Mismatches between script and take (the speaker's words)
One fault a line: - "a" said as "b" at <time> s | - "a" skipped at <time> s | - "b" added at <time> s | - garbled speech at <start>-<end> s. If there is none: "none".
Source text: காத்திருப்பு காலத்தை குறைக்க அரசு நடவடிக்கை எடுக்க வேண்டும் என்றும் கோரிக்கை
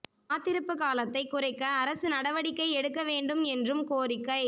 none